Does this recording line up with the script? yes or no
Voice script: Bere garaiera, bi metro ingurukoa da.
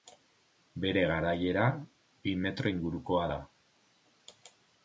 yes